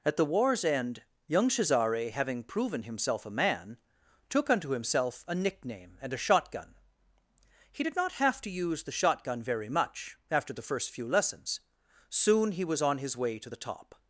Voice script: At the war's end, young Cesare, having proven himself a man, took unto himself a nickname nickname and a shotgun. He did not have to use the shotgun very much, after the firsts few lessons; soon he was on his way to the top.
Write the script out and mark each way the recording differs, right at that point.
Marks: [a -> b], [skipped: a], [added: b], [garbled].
At the war's end, young Cesare, having proven himself a man, took unto himself a nickname [skipped: nickname] and a shotgun. He did not have to use the shotgun very much, after the [firsts -> first] few lessons; soon he was on his way to the top.